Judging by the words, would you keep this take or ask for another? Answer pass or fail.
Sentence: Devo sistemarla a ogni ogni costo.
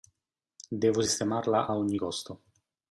fail